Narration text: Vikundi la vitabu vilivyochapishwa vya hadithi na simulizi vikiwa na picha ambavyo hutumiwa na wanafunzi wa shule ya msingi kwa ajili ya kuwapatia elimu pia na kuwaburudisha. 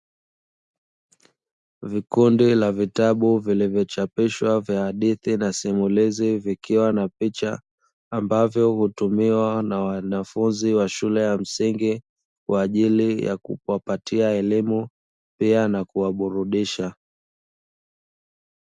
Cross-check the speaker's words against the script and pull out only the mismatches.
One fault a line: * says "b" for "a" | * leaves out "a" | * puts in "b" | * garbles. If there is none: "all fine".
all fine